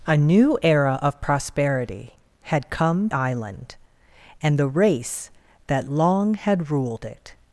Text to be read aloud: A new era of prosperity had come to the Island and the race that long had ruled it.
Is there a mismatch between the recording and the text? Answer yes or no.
yes